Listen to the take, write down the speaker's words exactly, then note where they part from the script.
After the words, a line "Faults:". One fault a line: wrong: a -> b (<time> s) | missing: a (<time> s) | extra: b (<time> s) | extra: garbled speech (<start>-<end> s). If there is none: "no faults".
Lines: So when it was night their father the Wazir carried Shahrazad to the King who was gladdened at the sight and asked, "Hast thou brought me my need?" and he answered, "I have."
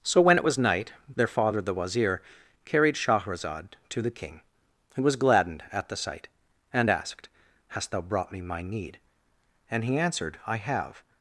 So when it was night their father the Wazir carried Shahrazad to the King who was gladdened at the sight and asked, "Hast thou brought me my need?" and he answered, "I have."
Faults:
no faults